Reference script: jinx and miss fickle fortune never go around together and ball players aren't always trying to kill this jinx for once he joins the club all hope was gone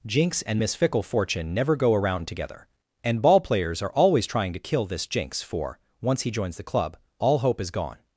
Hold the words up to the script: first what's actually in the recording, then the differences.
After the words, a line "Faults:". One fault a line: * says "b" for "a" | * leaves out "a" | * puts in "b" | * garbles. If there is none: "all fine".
jinx and miss fickle fortune never go around together and ball players are always trying to kill this jinx for once he joins the club all hope is gone
Faults:
* says "are" for "aren't"
* says "is" for "was"